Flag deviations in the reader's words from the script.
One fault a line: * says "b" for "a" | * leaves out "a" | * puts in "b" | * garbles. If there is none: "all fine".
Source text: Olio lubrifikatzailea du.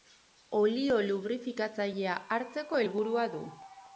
* puts in "hartzeko helburua"